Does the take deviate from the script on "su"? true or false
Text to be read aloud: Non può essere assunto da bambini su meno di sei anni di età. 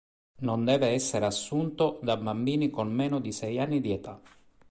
true